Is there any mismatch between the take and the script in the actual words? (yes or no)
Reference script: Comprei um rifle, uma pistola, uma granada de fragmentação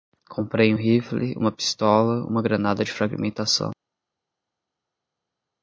no